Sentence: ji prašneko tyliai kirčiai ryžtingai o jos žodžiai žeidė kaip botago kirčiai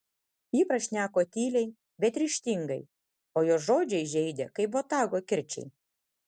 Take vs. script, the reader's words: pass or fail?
fail